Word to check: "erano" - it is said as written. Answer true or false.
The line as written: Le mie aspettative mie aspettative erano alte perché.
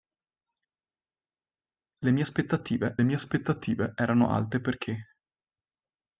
true